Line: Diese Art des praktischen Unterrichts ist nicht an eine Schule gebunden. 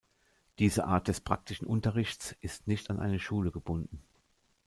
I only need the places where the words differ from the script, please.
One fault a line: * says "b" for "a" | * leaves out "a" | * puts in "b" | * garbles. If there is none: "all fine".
all fine